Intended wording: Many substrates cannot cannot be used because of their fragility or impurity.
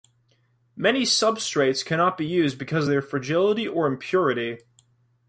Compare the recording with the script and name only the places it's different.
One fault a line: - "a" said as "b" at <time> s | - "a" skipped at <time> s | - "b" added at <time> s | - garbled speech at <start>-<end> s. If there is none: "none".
- "cannot" skipped at 2.2 s